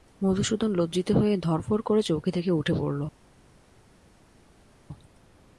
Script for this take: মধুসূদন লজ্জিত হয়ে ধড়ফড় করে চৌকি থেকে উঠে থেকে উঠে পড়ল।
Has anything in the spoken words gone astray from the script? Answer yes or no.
yes